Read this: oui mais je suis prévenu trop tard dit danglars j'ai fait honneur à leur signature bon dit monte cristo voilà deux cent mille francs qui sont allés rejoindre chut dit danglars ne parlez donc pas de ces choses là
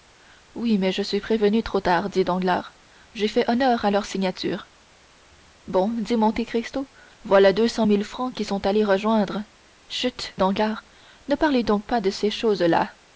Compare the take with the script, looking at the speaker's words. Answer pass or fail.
fail